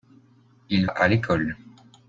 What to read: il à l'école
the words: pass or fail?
pass